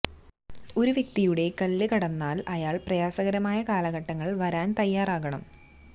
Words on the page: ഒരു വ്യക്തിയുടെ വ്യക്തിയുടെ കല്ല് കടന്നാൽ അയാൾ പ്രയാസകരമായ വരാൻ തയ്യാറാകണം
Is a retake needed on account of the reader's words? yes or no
yes